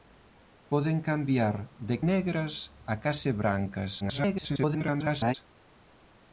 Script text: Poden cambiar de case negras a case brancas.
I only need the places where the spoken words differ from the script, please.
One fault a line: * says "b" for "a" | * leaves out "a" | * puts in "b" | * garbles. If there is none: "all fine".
* leaves out "case"
* garbles